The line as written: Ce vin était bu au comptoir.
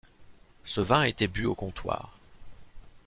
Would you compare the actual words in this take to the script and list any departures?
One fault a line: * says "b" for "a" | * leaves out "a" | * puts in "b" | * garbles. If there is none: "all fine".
all fine